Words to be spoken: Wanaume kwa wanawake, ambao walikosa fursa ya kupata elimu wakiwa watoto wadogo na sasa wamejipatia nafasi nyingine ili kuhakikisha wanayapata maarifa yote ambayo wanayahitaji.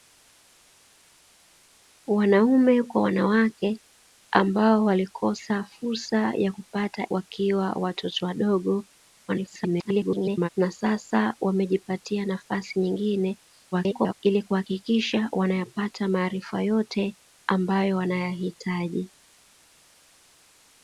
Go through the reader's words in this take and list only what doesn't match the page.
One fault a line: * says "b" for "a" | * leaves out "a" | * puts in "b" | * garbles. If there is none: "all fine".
* leaves out "elimu"
* garbles
* garbles